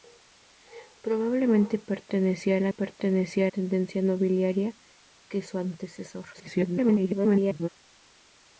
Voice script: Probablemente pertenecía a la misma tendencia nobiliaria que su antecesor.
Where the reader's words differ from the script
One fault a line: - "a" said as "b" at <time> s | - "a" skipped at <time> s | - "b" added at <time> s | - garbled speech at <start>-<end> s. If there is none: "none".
- "misma" said as "pertenecía" at 2.7 s
- garbled speech at 6.3-7.7 s